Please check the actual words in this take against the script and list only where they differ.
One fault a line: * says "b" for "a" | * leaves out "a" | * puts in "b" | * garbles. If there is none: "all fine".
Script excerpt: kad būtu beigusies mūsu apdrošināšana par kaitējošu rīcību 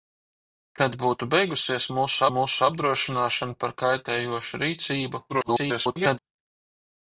* puts in "mūsu"
* garbles